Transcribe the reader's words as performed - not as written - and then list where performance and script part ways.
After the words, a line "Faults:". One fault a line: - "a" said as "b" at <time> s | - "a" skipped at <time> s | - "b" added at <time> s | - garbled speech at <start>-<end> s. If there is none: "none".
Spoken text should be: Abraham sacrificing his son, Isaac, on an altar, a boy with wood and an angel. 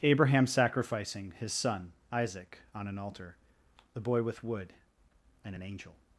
Abraham sacrificing his son, Isaac, on an altar, the boy with wood and an angel.
Faults:
- "a" said as "the" at 3.9 s